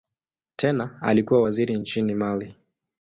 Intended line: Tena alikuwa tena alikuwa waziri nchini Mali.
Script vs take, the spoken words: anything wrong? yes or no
yes